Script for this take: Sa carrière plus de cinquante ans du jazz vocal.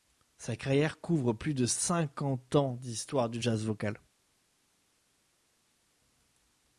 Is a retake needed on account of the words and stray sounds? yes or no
yes